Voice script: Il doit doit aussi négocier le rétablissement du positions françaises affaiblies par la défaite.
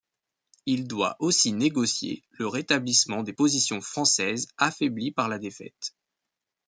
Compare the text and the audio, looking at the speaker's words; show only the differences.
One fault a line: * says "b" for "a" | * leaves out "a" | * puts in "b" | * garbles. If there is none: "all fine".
* leaves out "doit"
* says "des" for "du"